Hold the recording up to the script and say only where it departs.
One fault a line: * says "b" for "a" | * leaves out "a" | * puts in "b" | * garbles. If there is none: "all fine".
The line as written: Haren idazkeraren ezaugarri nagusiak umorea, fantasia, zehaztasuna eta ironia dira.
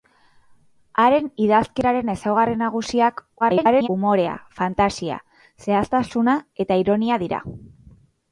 * garbles